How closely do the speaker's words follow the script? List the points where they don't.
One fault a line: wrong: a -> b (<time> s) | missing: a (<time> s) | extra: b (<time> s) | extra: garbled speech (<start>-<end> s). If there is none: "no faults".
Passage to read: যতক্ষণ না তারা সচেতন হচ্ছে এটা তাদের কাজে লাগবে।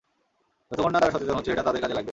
no faults